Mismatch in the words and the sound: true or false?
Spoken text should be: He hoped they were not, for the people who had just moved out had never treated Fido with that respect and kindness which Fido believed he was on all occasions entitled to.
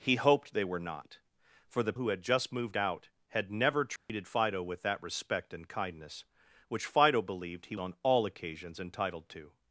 true